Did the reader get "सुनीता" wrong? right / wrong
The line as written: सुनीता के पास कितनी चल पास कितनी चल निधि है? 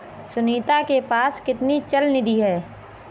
right